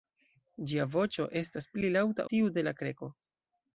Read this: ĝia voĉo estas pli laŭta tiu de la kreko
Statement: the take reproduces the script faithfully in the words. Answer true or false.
true